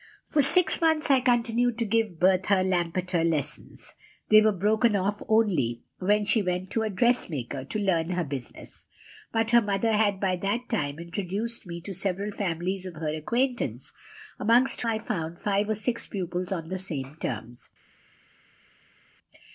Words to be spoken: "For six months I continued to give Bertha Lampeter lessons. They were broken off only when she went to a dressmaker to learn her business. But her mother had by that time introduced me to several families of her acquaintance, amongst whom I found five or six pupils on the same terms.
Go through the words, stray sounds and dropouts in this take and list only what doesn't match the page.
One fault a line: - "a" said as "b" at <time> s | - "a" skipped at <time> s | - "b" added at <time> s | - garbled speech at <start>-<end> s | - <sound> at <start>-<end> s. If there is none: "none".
- "whom" skipped at 14.8 s